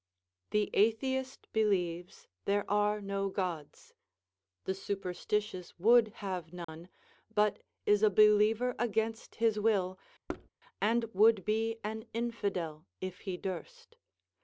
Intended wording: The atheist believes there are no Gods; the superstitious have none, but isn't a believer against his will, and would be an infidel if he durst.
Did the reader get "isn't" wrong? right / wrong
wrong